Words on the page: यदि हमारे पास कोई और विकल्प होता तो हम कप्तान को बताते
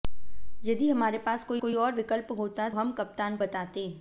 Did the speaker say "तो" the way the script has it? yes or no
no